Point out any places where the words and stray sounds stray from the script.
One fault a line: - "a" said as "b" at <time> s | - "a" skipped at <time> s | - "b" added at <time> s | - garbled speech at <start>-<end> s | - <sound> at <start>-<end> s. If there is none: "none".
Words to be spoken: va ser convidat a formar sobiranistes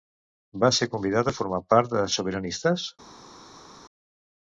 - "part de" added at 1.8 s